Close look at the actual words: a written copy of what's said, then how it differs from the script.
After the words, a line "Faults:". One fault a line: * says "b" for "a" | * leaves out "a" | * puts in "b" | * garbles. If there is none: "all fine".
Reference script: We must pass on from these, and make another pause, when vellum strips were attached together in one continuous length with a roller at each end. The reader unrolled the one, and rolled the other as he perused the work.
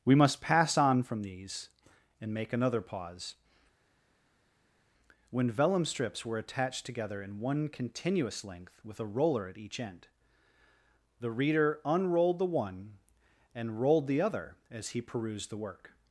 We must pass on from these, and make another pause, when vellum strips were attached together in one continuous length with a roller at each end. The reader unrolled the one, and rolled the other as he perused the work.
Faults:
all fine